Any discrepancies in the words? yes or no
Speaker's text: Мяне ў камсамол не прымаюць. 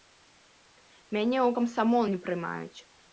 no